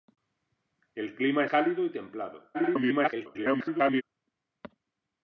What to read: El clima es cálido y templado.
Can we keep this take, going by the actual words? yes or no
no